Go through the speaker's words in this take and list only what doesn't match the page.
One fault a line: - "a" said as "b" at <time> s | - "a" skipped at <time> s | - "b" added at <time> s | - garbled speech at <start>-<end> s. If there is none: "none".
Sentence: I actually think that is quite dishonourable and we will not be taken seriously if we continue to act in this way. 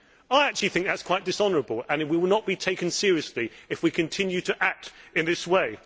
none